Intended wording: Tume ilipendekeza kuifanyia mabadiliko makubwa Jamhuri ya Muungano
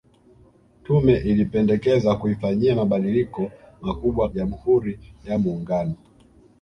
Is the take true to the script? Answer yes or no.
yes